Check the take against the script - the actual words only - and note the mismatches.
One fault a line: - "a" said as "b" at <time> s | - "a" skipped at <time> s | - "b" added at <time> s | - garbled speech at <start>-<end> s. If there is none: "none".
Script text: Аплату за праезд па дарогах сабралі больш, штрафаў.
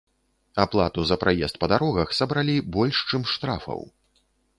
- "чым" added at 3.1 s